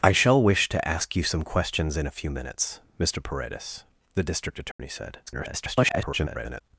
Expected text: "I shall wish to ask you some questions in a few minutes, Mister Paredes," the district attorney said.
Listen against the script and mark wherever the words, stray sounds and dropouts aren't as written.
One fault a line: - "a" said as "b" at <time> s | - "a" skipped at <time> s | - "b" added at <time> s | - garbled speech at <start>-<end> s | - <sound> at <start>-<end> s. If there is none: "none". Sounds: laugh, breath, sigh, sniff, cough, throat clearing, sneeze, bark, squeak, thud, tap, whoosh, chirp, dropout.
- dropout at 4.7-4.8 s
- garbled speech at 5.3-6.6 s